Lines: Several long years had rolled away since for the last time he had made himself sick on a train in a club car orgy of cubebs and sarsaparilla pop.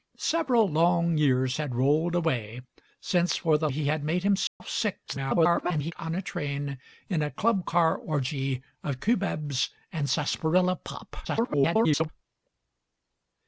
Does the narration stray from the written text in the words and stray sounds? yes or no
yes